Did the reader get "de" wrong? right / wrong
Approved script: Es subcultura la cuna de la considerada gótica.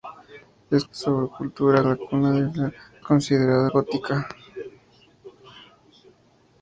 right